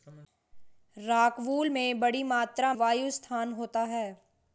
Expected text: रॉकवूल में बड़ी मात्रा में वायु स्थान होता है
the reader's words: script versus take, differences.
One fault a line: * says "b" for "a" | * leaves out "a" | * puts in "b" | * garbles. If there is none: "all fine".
* leaves out "में"